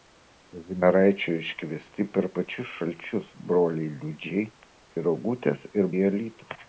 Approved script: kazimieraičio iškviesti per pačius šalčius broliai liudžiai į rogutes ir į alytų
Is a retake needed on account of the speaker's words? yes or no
no